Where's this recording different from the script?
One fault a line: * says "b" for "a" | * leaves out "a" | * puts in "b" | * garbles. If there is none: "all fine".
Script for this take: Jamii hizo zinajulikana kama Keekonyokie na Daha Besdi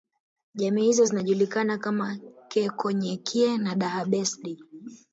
all fine